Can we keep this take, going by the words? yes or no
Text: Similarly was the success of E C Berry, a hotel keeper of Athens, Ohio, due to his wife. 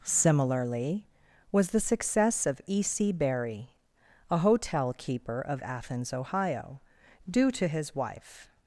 yes